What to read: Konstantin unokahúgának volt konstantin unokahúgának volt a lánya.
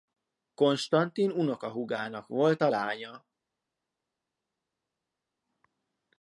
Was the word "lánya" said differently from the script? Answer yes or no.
no